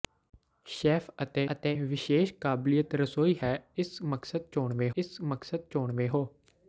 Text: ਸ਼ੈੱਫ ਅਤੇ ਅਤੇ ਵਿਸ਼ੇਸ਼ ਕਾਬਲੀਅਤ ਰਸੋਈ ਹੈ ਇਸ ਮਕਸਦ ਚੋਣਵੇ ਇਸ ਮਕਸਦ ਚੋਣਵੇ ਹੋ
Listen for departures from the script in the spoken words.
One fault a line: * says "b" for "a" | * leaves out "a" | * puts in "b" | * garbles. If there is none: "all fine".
all fine